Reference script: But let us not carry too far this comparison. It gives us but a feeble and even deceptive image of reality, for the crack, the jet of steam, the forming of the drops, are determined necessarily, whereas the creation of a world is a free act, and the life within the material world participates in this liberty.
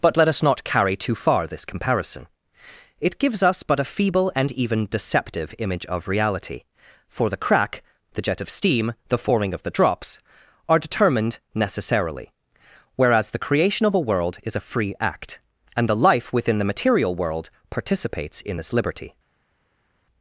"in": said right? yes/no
yes